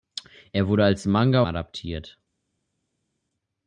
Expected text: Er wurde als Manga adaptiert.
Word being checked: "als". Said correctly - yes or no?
yes